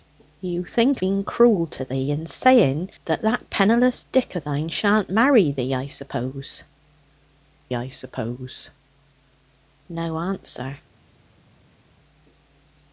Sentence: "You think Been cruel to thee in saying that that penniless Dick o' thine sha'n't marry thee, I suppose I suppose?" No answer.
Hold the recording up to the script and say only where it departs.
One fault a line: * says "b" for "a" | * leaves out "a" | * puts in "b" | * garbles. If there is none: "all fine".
all fine